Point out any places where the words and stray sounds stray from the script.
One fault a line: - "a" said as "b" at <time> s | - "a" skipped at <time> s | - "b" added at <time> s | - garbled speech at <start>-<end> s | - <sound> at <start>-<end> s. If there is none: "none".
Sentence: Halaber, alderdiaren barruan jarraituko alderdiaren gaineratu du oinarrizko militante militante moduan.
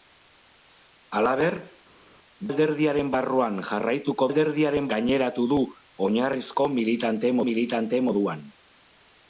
none